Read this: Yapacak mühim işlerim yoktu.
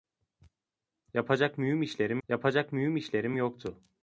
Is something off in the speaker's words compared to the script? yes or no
yes